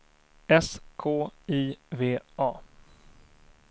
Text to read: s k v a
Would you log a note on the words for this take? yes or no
yes